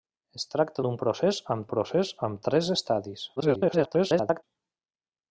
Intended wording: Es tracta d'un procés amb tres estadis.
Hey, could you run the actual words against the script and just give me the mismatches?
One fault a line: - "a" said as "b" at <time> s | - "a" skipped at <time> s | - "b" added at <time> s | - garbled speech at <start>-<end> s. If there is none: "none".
- "procés amb" added at 1.7 s
- garbled speech at 3.4-4.4 s